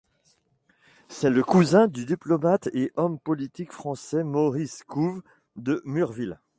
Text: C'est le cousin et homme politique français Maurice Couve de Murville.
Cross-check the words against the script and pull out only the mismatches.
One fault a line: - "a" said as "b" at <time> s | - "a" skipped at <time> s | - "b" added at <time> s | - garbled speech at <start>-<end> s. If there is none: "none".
- "du diplomate" added at 1.9 s